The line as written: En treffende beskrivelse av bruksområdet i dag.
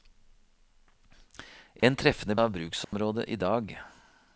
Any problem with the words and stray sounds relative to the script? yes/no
yes